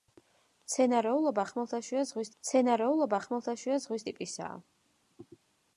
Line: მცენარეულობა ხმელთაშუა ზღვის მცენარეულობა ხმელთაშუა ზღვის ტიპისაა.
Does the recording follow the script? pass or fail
pass